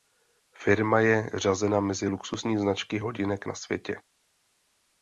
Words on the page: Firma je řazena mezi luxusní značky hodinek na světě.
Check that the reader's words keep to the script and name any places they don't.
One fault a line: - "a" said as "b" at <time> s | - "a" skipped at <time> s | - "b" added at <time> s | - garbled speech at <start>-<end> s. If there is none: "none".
none